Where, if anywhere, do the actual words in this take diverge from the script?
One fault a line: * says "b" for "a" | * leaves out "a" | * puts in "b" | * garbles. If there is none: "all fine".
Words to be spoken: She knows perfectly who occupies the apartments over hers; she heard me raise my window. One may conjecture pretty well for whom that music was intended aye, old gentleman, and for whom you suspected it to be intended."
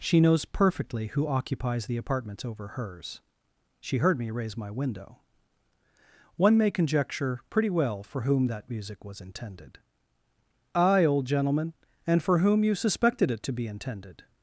all fine